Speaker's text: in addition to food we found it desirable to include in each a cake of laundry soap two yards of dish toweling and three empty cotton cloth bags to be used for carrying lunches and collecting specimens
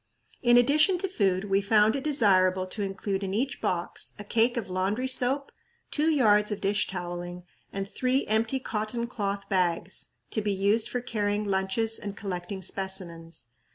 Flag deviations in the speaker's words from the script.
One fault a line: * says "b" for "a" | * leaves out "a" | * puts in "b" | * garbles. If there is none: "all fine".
* puts in "box"